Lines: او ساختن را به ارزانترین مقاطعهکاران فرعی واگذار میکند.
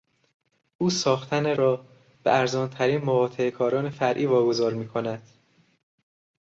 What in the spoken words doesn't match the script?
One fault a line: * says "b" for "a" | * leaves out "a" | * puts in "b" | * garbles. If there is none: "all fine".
all fine